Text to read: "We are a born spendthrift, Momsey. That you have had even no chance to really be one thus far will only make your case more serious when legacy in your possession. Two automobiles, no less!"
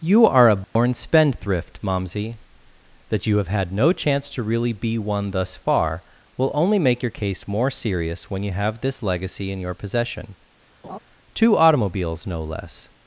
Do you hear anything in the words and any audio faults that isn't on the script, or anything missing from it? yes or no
yes